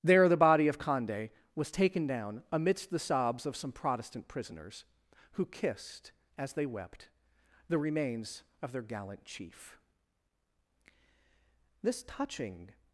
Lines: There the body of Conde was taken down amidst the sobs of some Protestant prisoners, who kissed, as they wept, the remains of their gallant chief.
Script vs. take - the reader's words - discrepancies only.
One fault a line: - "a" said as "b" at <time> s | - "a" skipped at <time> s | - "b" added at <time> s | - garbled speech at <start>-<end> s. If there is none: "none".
- "This touching" added at 11.8 s